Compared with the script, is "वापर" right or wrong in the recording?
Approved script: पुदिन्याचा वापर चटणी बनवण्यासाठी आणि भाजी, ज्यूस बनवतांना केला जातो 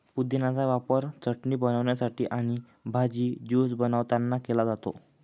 right